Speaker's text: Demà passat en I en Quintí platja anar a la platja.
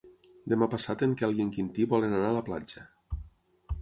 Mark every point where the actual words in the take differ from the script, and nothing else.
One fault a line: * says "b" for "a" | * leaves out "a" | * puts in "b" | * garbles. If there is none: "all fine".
* puts in "Quel"
* says "volen" for "platja"